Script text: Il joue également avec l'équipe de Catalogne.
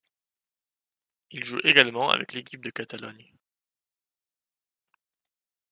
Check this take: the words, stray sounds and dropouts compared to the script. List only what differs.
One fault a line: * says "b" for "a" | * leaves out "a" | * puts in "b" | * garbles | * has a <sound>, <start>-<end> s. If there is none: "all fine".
all fine